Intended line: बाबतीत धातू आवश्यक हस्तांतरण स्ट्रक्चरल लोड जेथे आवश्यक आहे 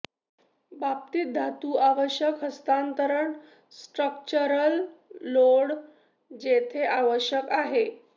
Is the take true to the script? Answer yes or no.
yes